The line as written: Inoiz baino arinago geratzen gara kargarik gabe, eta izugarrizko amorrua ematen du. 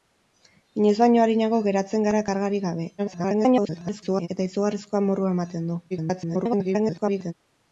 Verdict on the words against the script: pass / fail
fail